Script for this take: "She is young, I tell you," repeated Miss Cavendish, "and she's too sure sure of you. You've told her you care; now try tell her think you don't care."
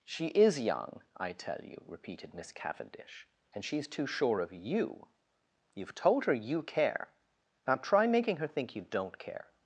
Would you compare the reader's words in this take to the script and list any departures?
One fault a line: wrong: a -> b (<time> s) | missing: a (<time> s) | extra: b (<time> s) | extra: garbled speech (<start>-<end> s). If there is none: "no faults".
missing: sure (4.4 s)
wrong: tell -> making (8.1 s)